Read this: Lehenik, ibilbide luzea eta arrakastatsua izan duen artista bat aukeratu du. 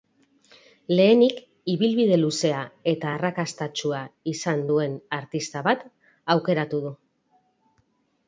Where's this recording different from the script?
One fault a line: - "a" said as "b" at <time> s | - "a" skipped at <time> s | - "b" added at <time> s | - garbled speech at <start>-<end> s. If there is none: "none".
none